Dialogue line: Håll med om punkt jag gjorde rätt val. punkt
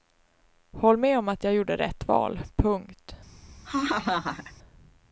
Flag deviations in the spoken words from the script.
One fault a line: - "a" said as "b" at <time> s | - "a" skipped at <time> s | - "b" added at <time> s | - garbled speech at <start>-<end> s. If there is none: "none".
- "punkt" said as "att" at 1.3 s